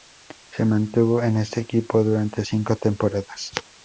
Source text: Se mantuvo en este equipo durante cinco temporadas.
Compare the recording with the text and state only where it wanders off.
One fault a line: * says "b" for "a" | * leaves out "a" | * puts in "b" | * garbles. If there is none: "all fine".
all fine